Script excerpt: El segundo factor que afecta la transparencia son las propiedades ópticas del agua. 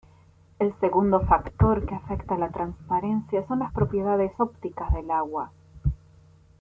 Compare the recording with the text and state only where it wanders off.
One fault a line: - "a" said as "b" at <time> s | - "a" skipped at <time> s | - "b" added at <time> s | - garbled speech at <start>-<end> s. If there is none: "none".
none